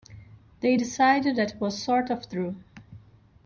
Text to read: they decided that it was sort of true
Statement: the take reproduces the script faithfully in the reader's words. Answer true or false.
true